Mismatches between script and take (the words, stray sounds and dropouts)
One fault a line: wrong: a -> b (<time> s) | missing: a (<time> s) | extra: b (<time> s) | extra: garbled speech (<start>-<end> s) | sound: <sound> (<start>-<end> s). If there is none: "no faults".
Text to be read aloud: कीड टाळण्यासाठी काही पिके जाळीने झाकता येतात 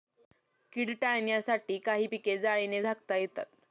no faults